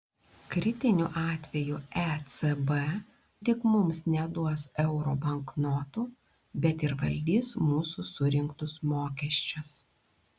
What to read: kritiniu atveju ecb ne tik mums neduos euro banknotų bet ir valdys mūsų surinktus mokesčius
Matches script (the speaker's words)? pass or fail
fail